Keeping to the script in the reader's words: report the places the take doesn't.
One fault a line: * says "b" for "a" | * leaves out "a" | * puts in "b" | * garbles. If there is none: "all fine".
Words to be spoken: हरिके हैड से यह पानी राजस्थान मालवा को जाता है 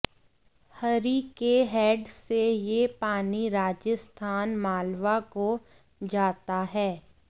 all fine